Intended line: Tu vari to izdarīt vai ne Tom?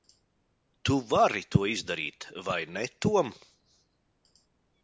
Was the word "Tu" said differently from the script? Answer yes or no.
no